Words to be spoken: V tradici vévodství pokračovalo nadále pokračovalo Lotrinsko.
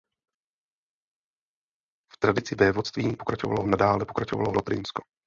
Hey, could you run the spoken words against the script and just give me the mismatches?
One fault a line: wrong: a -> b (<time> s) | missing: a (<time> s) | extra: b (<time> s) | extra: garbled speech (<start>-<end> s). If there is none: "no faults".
no faults